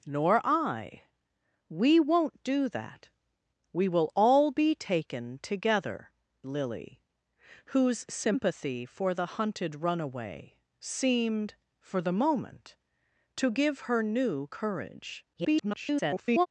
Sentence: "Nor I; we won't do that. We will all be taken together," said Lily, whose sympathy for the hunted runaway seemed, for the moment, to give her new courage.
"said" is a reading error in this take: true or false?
true